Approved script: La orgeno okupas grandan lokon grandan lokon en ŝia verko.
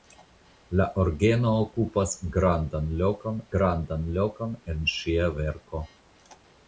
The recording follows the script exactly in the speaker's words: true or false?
true